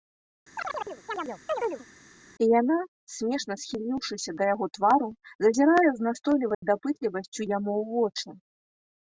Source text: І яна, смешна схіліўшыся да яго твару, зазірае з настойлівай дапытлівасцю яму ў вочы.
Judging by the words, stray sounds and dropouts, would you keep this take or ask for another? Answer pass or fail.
fail